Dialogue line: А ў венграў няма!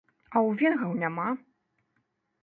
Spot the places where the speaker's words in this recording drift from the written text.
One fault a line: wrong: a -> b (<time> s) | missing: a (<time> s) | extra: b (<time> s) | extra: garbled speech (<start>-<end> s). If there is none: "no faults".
no faults